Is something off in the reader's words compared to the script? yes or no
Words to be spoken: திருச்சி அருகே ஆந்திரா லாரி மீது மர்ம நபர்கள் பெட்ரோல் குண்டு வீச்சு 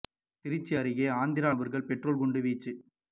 yes